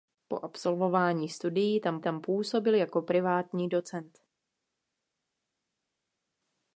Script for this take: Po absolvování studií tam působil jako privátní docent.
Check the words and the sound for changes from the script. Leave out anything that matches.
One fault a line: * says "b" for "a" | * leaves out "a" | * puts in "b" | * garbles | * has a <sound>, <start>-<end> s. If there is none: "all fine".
* puts in "tam"